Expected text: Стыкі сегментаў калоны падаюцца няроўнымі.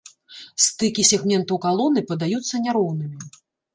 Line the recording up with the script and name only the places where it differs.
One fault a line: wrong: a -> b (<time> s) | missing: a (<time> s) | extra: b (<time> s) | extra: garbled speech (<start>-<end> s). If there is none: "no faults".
no faults